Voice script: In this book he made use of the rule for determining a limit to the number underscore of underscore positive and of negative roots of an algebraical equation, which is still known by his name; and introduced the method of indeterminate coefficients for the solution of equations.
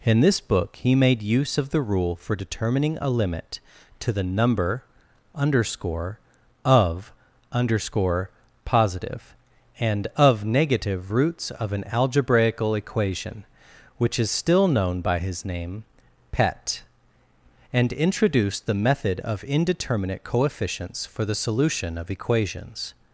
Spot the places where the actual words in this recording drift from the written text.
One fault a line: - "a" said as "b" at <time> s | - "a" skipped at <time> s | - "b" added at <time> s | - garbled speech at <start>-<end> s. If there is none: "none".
- "pet" added at 16.3 s